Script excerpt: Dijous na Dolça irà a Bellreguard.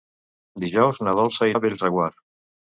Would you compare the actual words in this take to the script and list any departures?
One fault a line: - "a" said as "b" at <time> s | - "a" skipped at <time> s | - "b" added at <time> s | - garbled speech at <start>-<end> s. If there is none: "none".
- "irà" skipped at 1.5 s